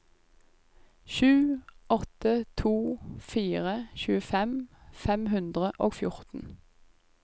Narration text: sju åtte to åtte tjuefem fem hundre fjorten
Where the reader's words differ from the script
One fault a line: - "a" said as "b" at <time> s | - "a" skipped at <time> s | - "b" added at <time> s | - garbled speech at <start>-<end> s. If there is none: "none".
- "åtte" said as "fire" at 3.2 s
- "og" added at 5.8 s